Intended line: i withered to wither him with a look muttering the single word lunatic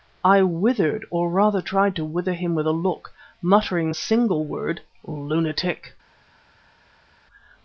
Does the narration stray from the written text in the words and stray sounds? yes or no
yes